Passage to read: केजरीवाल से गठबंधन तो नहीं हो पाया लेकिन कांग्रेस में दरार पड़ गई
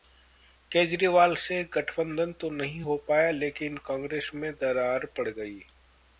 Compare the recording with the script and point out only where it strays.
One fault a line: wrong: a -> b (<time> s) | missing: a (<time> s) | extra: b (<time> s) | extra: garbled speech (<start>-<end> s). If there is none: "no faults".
no faults